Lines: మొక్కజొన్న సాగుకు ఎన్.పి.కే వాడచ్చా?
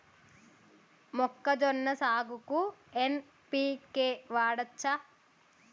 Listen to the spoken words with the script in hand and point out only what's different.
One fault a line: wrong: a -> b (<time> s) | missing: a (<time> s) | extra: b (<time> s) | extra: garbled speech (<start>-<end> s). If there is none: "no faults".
no faults